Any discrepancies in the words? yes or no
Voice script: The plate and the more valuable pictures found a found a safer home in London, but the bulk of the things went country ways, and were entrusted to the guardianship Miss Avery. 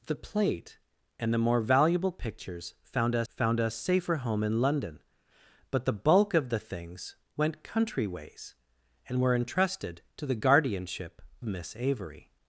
no